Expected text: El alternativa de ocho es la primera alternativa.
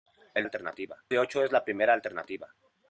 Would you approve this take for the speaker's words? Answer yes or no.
yes